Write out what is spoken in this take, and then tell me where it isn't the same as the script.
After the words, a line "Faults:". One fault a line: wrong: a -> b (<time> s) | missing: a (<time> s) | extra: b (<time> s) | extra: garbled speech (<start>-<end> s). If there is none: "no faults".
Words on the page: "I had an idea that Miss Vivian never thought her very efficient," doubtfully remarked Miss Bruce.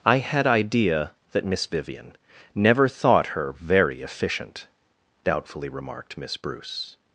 "I had idea that Miss Vivian never thought her very efficient," doubtfully remarked Miss Bruce.
Faults:
missing: an (0.5 s)